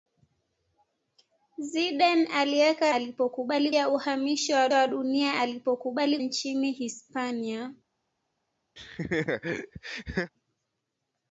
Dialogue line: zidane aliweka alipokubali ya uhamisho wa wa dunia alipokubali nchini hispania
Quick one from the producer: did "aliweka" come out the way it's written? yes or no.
yes